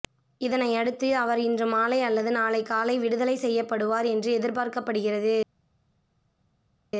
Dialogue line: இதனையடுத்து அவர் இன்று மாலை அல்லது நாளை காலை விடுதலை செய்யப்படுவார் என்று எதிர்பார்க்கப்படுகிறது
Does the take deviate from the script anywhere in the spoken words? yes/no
no